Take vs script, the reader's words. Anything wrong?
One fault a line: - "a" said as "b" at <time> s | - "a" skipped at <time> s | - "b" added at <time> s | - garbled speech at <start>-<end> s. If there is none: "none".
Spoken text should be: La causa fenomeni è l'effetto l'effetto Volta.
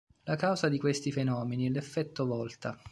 - "di questi" added at 0.7 s
- "l'effetto" skipped at 2.3 s